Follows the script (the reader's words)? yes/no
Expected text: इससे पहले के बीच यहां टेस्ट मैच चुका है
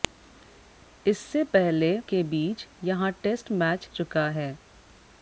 yes